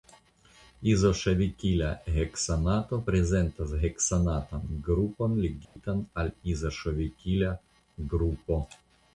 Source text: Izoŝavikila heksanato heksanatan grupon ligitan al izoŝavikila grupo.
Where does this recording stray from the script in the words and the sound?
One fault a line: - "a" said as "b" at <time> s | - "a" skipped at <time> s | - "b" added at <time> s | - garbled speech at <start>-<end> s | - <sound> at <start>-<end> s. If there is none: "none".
- "prezentas" added at 3.1 s
- dropout at 5.6-5.8 s